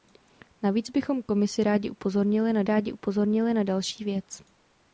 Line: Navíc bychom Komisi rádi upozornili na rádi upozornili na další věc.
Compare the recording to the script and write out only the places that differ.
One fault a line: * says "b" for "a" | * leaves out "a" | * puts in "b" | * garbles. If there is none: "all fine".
all fine